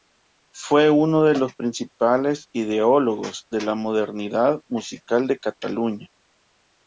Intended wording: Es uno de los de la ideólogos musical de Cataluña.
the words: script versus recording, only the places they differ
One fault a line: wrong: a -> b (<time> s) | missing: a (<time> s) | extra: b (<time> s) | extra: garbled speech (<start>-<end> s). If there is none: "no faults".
wrong: Es -> Fue (0.5 s)
extra: principales ideólogos (1.5 s)
wrong: ideólogos -> modernidad (3.8 s)